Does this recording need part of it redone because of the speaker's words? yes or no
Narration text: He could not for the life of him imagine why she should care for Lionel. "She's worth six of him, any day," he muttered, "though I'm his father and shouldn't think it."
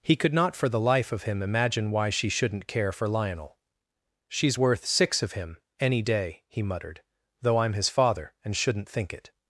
yes